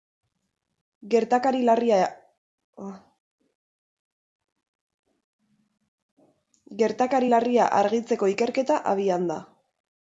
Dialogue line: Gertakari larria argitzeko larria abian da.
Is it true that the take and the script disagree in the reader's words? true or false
true